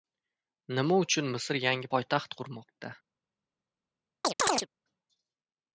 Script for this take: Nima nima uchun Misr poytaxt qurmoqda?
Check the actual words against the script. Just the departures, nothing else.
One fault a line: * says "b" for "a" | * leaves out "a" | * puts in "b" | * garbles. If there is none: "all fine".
* leaves out "nima"
* puts in "yangi"